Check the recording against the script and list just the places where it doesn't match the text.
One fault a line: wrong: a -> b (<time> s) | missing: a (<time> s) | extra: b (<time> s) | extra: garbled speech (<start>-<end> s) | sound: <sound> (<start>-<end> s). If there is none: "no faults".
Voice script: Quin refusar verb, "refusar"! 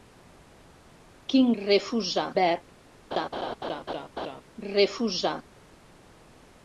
sound: laugh (3.1-4.4 s)